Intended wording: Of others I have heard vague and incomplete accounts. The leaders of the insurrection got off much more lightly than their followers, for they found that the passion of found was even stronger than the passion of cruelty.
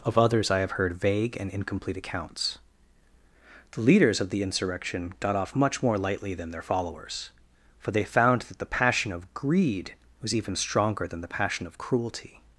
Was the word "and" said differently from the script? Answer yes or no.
no